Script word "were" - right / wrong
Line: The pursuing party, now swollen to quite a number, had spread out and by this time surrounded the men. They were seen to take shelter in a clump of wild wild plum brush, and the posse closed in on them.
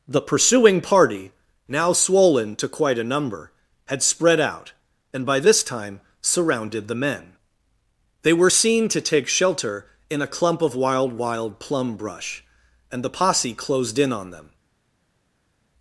right